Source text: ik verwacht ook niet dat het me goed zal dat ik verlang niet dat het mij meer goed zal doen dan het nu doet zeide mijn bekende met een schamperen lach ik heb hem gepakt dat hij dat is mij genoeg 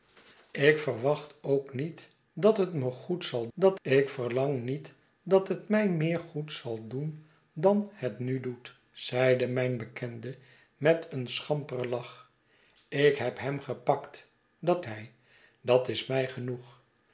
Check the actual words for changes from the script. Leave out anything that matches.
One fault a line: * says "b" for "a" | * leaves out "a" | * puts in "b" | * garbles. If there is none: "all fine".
all fine